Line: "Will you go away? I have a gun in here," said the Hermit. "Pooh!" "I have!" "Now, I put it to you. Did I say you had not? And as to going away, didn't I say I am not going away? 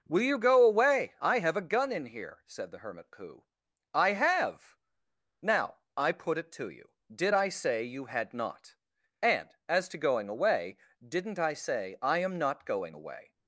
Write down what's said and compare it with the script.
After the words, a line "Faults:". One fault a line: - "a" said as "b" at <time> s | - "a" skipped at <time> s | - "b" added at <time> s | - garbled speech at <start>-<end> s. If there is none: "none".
"Will you go away? I have a gun in here," said the Hermit. "Pooh!" "I have!" "Now, I put it to you. Did I say you had not? And as to going away, didn't I say I am not going away?
Faults:
none